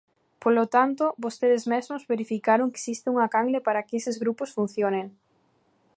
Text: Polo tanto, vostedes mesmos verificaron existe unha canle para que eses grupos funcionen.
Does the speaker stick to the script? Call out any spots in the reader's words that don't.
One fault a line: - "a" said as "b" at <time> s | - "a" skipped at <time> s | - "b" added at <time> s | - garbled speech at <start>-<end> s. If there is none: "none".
none